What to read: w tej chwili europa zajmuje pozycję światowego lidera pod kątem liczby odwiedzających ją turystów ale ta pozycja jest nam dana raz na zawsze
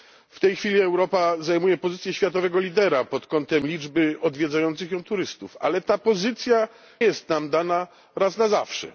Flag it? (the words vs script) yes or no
no